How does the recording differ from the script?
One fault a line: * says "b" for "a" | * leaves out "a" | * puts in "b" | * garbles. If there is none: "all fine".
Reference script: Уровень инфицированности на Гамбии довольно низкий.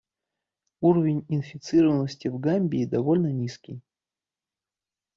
* says "в" for "на"